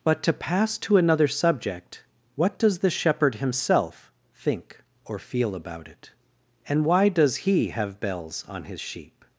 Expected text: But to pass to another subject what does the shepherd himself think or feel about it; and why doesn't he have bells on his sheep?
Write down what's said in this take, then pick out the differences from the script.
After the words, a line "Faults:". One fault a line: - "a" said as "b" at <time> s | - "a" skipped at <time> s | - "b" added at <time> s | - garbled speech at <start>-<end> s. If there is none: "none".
But to pass to another subject what does the shepherd himself think or feel about it; and why does he have bells on his sheep?
Faults:
- "doesn't" said as "does" at 7.1 s